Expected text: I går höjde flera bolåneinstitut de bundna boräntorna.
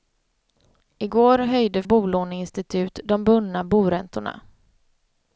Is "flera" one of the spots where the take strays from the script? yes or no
yes